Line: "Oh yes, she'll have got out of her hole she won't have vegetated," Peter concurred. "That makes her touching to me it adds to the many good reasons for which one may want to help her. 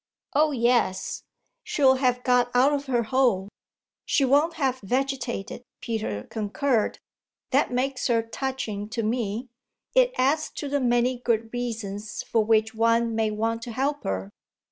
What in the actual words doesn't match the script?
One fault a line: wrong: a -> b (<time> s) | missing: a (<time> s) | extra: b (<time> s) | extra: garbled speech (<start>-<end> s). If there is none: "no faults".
no faults